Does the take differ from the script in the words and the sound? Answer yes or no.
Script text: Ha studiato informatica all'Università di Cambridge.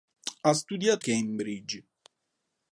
yes